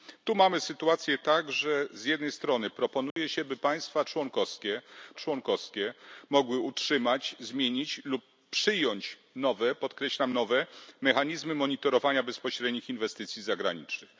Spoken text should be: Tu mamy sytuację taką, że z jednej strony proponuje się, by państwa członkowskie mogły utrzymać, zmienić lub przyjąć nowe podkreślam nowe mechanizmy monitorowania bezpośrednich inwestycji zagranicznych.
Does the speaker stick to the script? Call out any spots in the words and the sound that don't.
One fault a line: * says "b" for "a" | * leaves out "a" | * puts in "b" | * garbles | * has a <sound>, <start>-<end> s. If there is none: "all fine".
* has a dropout, 3.1-3.2 s
* puts in "członkowskie"